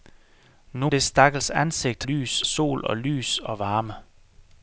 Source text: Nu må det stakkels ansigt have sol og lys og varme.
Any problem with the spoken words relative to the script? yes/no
yes